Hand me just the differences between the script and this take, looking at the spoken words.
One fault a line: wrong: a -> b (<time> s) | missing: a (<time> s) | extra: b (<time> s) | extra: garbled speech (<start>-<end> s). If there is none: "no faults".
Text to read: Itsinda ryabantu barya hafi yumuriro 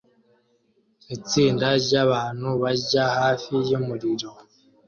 no faults